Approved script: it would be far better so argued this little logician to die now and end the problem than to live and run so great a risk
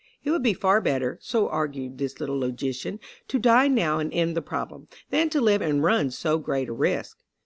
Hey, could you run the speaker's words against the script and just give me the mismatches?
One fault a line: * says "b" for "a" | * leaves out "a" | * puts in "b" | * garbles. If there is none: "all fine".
all fine